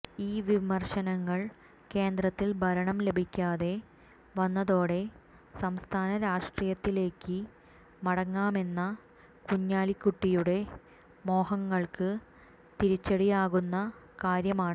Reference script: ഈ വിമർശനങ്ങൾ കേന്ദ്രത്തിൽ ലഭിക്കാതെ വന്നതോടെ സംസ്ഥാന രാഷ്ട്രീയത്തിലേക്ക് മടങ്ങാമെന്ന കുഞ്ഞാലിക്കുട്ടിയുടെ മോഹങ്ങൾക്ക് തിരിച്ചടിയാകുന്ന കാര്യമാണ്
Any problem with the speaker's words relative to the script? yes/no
yes